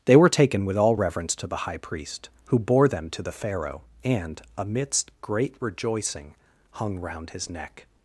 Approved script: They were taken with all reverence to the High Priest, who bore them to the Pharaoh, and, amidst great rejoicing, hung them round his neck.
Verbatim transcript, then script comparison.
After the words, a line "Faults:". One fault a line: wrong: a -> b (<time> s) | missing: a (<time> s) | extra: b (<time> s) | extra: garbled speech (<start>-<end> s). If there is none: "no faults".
They were taken with all reverence to the High Priest, who bore them to the Pharaoh, and, amidst great rejoicing, hung round his neck.
Faults:
missing: them (7.0 s)